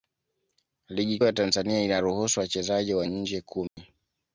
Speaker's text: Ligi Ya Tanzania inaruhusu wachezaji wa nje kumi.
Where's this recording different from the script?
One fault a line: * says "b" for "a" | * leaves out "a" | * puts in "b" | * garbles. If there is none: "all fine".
all fine